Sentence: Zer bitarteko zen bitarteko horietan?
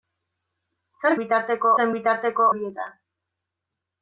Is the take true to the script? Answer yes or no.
yes